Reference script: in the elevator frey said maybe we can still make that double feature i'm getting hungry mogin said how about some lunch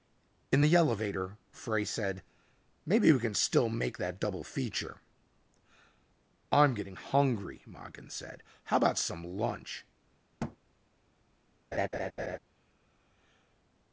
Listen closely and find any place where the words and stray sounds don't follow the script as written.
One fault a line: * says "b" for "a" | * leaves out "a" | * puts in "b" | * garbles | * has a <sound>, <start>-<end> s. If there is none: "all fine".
* has a thud, 10.4-10.6 s
* has a laugh, 11.7-12.4 s